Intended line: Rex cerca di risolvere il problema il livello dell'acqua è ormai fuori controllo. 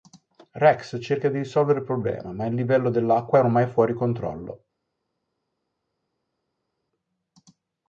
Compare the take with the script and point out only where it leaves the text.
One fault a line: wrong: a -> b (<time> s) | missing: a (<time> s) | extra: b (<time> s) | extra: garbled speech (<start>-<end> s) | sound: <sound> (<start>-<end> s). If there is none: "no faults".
extra: ma (2.3 s)